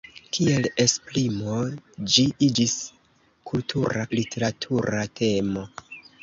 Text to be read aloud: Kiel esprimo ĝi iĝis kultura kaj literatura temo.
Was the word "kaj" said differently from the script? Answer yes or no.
yes